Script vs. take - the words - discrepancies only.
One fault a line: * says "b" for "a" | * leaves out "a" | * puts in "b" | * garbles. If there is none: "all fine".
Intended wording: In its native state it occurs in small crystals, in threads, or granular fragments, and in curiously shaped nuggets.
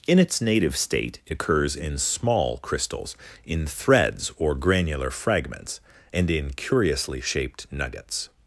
all fine